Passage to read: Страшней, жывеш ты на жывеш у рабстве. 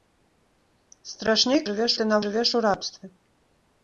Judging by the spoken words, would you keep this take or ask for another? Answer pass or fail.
pass